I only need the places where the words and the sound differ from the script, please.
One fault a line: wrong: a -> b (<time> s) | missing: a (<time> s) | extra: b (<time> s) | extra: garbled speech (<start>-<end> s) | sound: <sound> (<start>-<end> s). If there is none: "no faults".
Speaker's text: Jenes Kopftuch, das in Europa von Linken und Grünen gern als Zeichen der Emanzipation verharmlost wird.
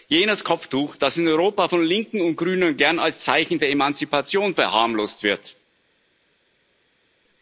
no faults